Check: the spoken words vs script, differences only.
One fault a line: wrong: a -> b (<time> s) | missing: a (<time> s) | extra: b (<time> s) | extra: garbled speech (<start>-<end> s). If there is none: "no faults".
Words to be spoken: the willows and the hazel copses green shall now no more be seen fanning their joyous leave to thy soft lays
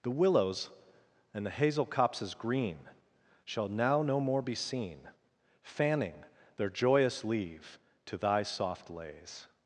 no faults